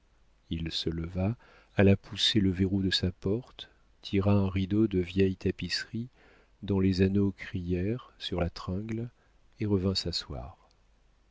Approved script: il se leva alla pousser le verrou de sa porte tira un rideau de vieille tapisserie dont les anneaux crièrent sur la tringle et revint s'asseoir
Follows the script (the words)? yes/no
yes